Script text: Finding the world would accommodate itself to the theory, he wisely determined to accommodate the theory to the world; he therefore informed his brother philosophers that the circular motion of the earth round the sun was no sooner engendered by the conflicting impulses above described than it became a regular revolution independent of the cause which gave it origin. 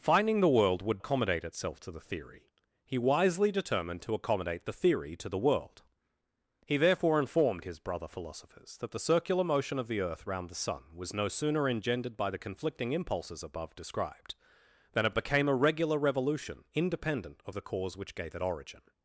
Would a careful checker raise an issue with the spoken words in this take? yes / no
no